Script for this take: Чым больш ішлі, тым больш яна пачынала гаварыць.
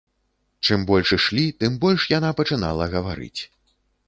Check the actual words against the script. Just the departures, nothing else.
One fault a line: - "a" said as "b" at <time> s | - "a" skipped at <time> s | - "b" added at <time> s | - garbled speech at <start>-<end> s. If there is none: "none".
none